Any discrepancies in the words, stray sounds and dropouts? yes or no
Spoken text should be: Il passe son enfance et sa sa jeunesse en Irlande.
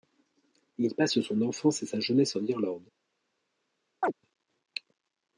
yes